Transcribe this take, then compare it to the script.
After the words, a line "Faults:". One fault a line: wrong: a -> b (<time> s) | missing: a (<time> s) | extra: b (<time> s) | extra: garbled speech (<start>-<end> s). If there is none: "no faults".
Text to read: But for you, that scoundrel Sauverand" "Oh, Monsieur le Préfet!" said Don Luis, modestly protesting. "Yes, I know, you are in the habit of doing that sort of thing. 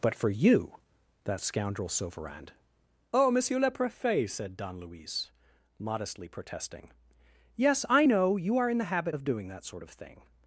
But for you, that scoundrel Sauverand" "Oh, Monsieur le Préfet!" said Don Luis, modestly protesting. "Yes, I know, you are in the habit of doing that sort of thing.
Faults:
no faults